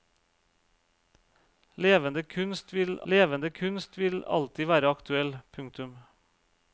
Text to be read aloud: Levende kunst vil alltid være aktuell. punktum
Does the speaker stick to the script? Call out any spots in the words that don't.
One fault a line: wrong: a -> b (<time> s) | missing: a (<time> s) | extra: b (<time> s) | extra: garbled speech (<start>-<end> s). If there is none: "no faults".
extra: levende kunst vil (3.1 s)